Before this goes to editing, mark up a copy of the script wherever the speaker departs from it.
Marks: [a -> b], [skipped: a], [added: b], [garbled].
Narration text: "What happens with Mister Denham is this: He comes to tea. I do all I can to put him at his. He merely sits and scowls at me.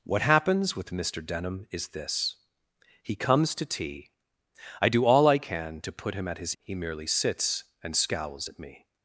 "What happens with Mister Denham is this: He comes to tea. I do all I can to put him at his. He merely sits and scowls at me.